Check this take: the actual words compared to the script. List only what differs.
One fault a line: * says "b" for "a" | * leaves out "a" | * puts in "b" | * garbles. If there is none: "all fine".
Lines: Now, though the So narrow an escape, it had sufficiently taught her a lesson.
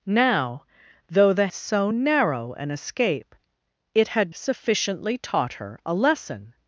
all fine